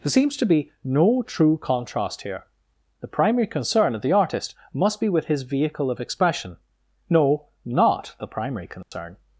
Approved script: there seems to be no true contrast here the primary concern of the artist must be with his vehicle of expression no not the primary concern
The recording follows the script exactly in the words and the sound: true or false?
false